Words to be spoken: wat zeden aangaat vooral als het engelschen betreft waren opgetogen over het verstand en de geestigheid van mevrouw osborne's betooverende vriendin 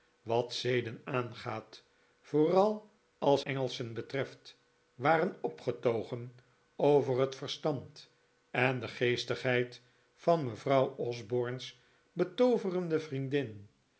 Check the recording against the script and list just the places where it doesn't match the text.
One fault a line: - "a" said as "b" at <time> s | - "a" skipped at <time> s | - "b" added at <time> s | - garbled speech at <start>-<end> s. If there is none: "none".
- "het" skipped at 3.4 s